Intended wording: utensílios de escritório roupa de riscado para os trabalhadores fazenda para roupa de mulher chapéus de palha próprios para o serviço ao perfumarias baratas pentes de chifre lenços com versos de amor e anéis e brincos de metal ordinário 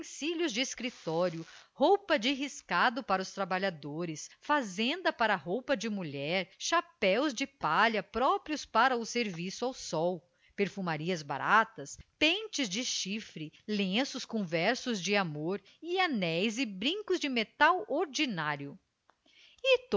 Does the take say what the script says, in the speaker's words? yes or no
no